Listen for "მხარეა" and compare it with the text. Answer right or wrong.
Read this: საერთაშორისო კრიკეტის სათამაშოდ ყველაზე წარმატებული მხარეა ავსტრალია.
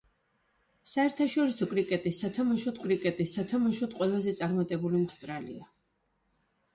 wrong